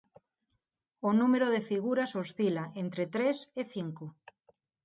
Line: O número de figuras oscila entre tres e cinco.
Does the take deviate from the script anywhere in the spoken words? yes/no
no